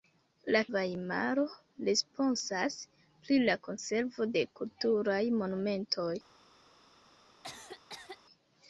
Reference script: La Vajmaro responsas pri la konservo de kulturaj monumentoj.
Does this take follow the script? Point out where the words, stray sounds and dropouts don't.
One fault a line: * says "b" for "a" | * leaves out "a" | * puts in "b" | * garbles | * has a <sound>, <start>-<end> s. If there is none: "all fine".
* has a cough, 7.4-8.2 s